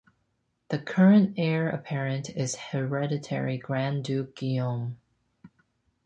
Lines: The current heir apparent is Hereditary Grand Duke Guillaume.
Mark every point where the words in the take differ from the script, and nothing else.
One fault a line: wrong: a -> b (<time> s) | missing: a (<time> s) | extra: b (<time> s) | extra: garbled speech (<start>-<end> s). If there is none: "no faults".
no faults